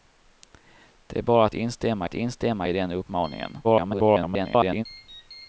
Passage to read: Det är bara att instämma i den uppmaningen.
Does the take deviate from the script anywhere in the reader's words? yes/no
yes